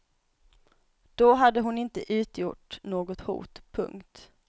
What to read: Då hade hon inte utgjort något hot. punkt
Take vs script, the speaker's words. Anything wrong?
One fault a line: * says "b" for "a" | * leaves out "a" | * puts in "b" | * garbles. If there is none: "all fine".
all fine